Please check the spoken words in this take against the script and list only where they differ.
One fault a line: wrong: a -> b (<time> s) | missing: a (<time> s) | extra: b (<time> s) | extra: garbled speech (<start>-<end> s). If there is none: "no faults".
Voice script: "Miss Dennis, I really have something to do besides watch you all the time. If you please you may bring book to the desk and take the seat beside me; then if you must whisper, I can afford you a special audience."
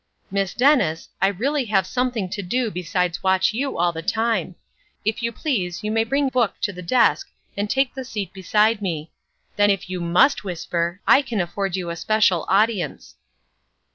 no faults